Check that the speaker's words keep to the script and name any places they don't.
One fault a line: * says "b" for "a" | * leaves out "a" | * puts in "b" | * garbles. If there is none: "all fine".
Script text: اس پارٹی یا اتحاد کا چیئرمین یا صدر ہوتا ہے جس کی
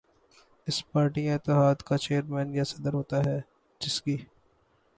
all fine